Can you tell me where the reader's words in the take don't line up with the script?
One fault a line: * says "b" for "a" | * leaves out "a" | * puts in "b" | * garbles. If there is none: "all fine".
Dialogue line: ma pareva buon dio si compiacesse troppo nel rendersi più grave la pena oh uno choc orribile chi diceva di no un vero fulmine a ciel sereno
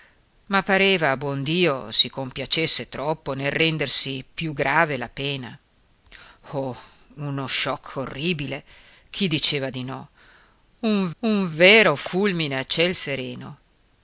* puts in "un"